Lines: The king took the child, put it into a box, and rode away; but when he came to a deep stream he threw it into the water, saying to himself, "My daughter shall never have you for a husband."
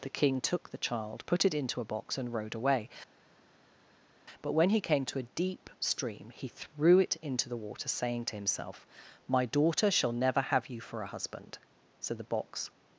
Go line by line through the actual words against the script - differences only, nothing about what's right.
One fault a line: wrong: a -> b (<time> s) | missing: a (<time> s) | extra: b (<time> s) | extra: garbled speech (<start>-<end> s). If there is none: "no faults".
extra: So the box (12.0 s)